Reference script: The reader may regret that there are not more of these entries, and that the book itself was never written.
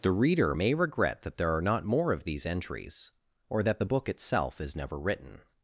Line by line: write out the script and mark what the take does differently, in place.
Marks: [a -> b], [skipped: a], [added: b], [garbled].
The reader may regret that there are not more of these entries, [and -> or] that the book itself [was -> is] never written.